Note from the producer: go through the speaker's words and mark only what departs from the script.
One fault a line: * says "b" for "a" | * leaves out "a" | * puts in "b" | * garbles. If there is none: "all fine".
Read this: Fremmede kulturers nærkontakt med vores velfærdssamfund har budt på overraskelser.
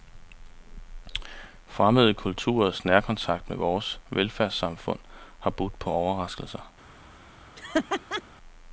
all fine